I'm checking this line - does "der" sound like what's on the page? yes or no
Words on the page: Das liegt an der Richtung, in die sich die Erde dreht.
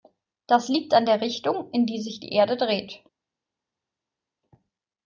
yes